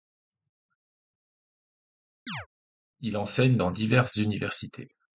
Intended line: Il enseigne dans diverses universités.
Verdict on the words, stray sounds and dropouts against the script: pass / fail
fail